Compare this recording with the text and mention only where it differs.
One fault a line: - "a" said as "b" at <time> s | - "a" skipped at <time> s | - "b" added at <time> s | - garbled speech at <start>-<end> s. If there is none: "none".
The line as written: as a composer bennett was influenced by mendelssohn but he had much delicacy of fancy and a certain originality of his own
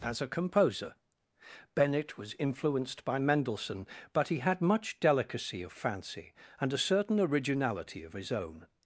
none